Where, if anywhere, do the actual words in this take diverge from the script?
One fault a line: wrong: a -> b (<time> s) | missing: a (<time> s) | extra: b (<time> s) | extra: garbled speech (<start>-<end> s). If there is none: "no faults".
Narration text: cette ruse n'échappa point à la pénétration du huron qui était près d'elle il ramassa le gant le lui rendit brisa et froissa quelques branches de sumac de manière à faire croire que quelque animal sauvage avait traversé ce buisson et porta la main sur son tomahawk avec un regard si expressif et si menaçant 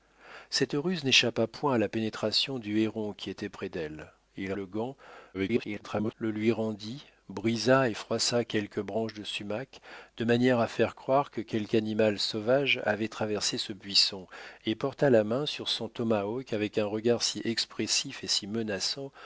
missing: ramassa (4.5 s)
extra: garbled speech (5.3-6.1 s)